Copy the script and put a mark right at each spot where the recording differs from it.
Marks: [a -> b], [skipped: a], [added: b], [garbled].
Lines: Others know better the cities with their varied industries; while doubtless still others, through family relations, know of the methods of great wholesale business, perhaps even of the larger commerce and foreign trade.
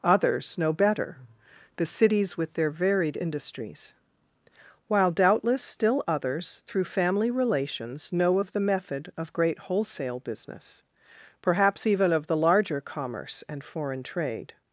Others know better the cities with their varied industries; while doubtless still others, through family relations, know of the [methods -> method] of great wholesale business, perhaps even of the larger commerce and foreign trade.